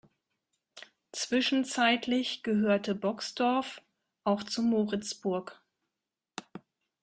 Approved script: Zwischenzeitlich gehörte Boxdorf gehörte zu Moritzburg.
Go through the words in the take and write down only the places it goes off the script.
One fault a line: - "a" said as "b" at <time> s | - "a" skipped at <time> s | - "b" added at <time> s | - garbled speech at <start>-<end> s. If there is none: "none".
- "gehörte" said as "auch" at 4.2 s